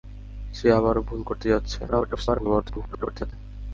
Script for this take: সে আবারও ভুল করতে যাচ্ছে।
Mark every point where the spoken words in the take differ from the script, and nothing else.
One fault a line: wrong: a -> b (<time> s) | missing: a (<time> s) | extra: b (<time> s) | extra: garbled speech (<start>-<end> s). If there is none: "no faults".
extra: garbled speech (1.9-3.3 s)